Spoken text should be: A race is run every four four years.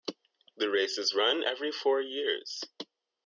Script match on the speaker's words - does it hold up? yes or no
no